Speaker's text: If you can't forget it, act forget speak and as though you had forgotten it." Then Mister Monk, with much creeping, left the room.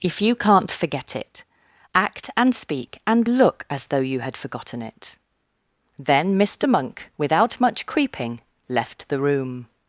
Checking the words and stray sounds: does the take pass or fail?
fail